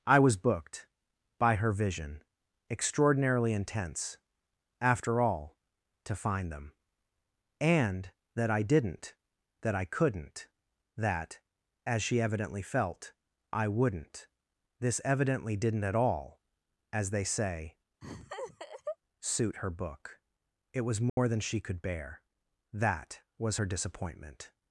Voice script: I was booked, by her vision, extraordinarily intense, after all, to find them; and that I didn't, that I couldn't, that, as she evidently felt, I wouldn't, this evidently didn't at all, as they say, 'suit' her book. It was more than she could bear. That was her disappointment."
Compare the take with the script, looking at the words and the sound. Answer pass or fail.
fail